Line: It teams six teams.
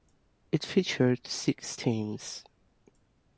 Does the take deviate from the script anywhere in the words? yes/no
yes